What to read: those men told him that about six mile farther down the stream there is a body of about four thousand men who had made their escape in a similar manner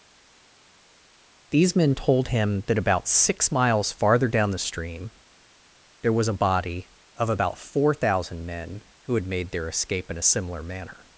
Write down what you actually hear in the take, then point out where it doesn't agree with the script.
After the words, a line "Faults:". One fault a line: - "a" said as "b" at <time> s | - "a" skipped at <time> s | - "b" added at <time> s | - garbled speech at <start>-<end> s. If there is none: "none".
these men told him that about six miles farther down the stream there was a body of about four thousand men who had made their escape in a similar manner
Faults:
- "those" said as "these" at 1.5 s
- "mile" said as "miles" at 3.5 s
- "is" said as "was" at 6.1 s